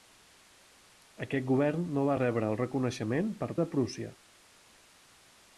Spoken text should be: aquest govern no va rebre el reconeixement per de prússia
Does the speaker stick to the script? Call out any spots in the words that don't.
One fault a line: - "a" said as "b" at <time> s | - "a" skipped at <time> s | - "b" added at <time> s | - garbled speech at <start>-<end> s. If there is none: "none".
none